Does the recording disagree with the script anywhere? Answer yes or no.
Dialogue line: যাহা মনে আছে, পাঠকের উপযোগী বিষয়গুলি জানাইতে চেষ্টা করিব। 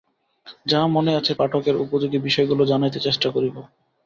no